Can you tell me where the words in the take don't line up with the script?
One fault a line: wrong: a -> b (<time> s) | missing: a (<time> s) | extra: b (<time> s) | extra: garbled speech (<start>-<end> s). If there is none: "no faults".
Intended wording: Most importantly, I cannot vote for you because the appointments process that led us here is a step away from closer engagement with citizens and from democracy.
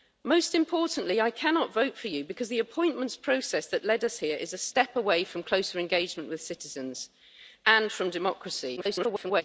extra: garbled speech (8.8-9.4 s)